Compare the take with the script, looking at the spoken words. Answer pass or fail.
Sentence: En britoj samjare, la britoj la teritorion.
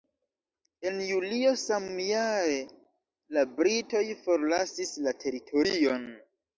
fail